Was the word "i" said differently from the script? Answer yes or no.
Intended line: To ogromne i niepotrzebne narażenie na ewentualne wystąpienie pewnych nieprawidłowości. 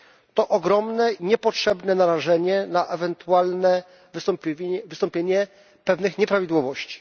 yes